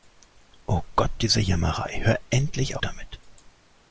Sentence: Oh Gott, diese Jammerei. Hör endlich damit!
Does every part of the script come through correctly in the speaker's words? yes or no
yes